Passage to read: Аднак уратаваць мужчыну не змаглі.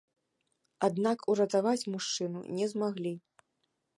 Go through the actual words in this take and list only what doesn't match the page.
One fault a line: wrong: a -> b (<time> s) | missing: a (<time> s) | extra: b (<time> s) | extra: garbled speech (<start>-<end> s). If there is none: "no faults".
no faults